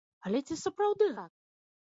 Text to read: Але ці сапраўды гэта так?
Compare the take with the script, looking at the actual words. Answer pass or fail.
fail